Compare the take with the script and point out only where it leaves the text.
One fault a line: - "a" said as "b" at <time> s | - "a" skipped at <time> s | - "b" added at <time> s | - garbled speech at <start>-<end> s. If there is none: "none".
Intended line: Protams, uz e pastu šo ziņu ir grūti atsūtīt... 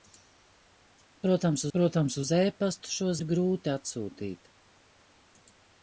- "protams" added at 1.8 s
- "ziņu" skipped at 3.1 s